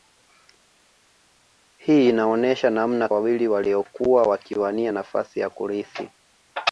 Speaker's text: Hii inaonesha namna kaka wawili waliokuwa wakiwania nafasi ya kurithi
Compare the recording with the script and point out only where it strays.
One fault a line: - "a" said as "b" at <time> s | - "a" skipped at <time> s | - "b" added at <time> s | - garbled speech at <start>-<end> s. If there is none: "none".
- "kaka" skipped at 3.1 s